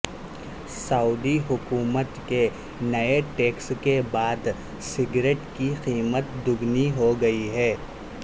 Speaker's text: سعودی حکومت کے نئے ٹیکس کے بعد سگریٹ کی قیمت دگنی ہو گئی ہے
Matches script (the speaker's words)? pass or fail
pass